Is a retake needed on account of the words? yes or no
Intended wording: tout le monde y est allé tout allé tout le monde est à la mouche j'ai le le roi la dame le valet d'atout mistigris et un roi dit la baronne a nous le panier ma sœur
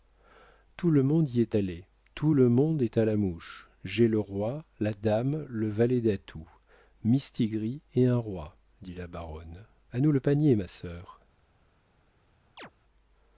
yes